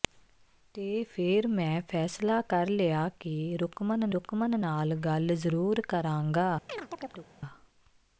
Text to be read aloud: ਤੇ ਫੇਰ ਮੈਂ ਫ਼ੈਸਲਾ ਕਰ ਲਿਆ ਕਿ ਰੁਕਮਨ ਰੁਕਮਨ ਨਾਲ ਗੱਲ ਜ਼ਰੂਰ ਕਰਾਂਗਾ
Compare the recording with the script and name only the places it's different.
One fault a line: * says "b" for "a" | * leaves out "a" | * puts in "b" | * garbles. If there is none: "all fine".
all fine